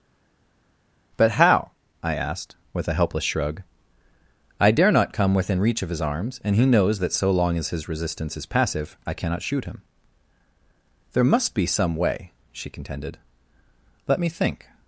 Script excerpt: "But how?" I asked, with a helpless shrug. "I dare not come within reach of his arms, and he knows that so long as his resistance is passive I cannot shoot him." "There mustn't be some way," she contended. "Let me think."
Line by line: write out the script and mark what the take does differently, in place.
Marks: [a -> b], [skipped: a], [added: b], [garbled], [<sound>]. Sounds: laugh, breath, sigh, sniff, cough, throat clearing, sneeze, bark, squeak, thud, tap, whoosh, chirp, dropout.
"But how?" I asked, with a helpless shrug. "I dare not come within reach of his arms, and he knows that so long as his resistance is passive I cannot shoot him." "There [mustn't -> must] be some way," she contended. "Let me think."